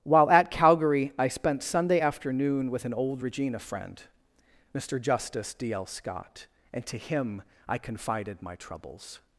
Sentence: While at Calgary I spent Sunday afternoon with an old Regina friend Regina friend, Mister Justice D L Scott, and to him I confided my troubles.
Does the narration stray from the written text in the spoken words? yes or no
yes